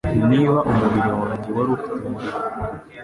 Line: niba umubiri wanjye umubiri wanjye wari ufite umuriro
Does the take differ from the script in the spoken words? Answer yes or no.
yes